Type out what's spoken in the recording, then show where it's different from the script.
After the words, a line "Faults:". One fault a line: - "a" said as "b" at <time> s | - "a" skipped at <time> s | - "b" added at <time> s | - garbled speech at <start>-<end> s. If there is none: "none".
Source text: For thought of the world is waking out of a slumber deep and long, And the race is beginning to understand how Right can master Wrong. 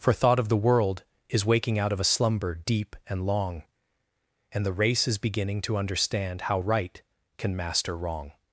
For thought of the world is waking out of a slumber deep and long, And the race is beginning to understand how Right can master Wrong.
Faults:
none